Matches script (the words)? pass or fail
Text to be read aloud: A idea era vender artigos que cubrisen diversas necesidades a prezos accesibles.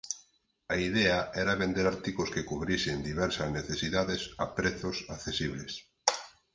pass